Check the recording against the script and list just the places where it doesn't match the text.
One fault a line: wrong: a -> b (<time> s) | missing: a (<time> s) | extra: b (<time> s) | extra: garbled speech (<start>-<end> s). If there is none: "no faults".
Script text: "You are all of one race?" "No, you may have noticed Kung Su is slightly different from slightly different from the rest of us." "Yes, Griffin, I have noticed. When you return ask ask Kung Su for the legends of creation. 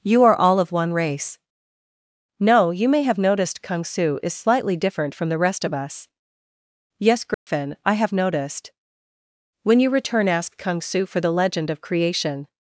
missing: slightly different from (5.3 s)
missing: ask (10.6 s)
wrong: legends -> legend (11.3 s)